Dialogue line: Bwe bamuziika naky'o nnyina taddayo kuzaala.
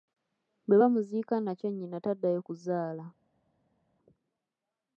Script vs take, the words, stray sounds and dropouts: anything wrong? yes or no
no